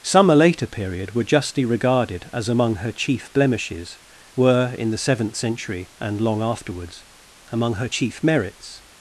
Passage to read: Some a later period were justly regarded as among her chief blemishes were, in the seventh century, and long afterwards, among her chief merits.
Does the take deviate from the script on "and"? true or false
false